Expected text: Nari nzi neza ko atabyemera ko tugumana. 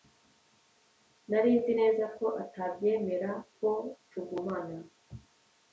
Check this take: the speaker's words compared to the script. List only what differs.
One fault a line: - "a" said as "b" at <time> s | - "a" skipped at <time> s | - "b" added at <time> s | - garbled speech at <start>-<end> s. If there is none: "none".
none